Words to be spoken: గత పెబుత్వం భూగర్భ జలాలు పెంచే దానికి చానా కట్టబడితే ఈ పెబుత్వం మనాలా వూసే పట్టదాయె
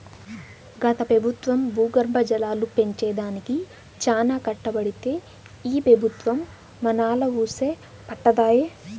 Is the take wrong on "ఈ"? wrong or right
right